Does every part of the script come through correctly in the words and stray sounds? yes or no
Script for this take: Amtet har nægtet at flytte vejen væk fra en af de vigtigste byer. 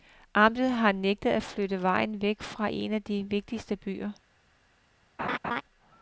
no